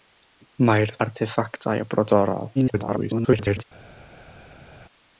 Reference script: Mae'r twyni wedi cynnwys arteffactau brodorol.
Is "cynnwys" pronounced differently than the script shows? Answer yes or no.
yes